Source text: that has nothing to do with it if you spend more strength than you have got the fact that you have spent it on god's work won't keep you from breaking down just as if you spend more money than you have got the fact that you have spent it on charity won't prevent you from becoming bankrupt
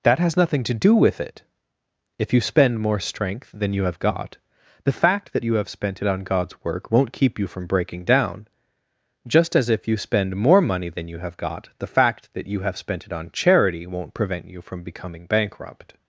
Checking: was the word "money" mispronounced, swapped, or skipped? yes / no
no